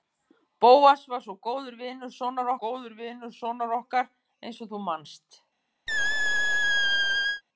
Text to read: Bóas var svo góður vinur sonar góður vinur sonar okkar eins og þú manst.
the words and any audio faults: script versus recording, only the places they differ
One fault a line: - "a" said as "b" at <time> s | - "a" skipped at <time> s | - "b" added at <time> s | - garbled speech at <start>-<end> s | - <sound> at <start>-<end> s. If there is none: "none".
- squeak at 5.9-7.4 s